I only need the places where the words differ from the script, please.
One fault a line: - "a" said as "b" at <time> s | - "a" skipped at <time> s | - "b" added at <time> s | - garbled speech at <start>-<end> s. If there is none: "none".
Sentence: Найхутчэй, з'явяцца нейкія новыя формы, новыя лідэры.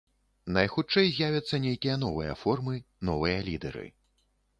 none